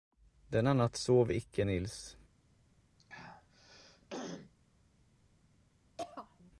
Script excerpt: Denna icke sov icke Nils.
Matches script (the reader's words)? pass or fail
fail